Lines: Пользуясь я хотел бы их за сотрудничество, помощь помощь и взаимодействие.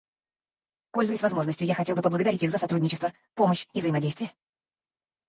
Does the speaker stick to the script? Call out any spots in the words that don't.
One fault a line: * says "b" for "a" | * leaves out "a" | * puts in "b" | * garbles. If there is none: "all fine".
* puts in "возможностью"
* puts in "поблагодарить"
* leaves out "помощь"